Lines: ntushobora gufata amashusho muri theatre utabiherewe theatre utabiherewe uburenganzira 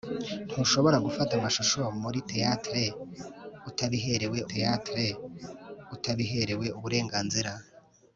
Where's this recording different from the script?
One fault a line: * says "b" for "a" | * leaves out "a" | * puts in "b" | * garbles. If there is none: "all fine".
all fine